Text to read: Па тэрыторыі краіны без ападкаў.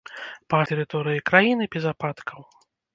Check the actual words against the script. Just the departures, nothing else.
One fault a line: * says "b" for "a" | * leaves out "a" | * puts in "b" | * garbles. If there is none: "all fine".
all fine